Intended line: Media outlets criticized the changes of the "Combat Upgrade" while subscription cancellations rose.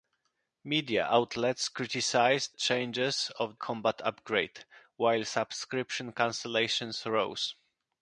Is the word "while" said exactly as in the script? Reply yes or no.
yes